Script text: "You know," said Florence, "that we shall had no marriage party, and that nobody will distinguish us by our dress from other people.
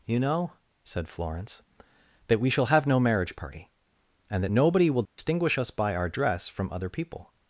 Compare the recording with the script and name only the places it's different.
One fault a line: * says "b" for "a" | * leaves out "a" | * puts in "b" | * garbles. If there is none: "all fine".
* says "have" for "had"